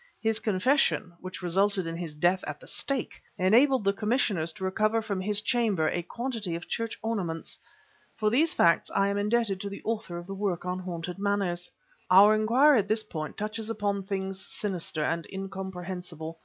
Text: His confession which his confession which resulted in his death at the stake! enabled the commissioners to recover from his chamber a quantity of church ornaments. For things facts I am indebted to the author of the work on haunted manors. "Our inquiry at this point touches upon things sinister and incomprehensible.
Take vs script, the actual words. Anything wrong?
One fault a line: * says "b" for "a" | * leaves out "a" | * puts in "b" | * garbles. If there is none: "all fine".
* leaves out "his confession which"
* says "these" for "things"